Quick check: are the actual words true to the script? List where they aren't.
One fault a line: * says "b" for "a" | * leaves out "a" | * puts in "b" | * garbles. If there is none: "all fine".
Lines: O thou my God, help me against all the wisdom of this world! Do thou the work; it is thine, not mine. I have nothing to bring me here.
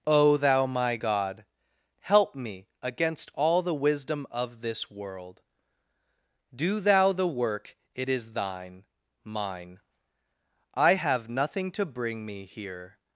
* leaves out "not"